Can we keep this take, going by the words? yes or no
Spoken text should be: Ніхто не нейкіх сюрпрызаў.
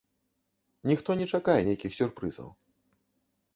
no